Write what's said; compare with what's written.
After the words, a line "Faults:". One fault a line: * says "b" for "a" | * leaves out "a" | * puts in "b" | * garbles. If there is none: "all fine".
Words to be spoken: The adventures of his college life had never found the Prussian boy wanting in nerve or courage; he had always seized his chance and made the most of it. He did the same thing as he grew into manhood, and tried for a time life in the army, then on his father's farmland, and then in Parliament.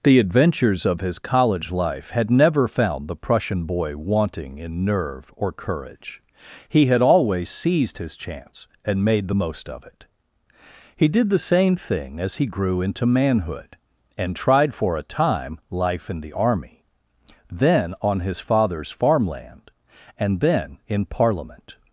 The adventures of his college life had never found the Prussian boy wanting in nerve or courage; he had always seized his chance and made the most of it. He did the same thing as he grew into manhood, and tried for a time life in the army, then on his father's farmland, and then in Parliament.
Faults:
all fine